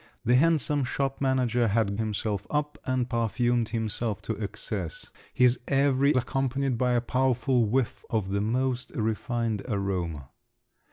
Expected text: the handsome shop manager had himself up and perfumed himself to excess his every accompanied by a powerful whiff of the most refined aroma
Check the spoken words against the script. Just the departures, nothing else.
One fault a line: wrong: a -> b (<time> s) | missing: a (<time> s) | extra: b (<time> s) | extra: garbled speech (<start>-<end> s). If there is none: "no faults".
no faults